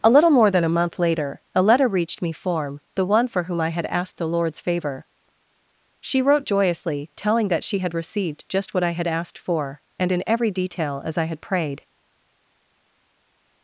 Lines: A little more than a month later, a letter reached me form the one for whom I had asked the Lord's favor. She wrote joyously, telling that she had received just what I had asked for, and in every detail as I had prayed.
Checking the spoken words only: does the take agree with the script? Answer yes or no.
yes